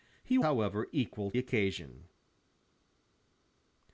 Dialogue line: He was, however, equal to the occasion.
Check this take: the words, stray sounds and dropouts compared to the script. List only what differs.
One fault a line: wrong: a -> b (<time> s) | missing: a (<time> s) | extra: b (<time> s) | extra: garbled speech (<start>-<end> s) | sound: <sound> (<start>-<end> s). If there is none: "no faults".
missing: was (0.4 s)
missing: to the (1.3 s)